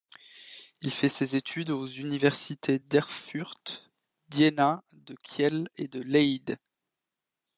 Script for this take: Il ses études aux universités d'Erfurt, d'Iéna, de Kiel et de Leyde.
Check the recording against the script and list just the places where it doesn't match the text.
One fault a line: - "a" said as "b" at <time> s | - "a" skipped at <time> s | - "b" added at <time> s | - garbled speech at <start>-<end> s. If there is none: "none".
- "fait" added at 0.9 s